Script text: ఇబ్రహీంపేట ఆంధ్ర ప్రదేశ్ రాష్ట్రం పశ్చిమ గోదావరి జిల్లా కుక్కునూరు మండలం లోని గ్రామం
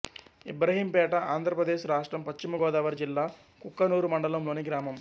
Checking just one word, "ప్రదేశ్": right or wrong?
right